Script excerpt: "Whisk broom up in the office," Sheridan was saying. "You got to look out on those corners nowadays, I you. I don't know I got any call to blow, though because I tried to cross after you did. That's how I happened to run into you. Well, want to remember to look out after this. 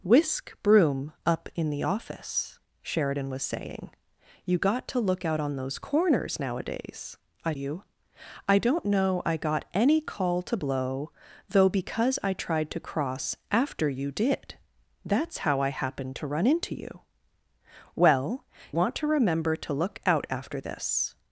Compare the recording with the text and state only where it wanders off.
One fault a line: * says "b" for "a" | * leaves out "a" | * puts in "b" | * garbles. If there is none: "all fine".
all fine